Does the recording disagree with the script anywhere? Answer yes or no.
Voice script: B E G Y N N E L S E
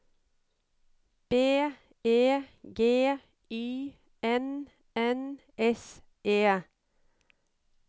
yes